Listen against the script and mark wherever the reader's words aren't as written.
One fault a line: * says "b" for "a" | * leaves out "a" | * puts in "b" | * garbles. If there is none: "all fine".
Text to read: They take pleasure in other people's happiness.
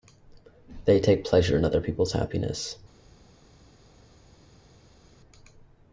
all fine